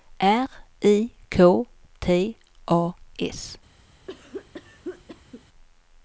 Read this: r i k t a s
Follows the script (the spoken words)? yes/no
yes